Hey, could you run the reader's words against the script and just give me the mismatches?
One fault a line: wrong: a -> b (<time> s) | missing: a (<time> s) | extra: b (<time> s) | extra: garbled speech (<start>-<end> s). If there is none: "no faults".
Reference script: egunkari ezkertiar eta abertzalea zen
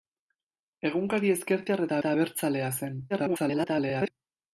extra: eta (2.0 s)
extra: garbled speech (3.1-4.1 s)